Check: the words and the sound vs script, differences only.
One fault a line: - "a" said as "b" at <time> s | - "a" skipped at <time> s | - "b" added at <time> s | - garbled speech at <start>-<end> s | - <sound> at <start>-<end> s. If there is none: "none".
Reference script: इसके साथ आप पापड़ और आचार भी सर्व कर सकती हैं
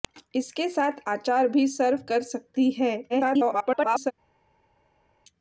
- "आप पापड़ और" skipped at 1.0 s
- garbled speech at 3.1-4.1 s